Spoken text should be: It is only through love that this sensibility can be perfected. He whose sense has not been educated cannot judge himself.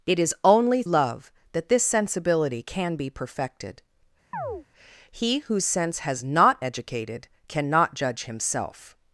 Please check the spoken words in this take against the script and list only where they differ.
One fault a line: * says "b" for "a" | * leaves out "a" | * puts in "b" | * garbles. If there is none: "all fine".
* leaves out "through"
* leaves out "been"